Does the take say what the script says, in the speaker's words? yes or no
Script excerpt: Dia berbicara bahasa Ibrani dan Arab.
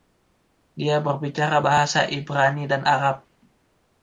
yes